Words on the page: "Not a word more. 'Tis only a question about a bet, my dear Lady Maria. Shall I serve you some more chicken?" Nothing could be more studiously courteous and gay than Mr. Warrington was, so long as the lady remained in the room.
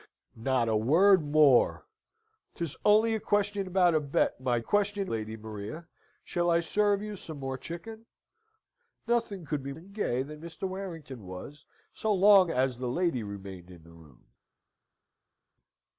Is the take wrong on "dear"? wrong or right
wrong